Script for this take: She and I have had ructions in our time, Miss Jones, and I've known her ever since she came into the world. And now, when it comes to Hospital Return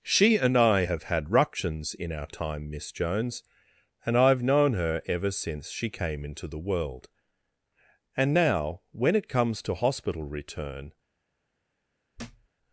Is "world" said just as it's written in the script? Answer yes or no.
yes